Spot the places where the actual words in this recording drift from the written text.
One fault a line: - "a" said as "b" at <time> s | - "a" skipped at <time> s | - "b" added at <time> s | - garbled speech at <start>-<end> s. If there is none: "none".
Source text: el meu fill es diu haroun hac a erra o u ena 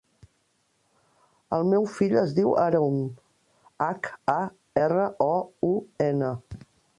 none